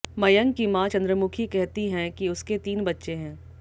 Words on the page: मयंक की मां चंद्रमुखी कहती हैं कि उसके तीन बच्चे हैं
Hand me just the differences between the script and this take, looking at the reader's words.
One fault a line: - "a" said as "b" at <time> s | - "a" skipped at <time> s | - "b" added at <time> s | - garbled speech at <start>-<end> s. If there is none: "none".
none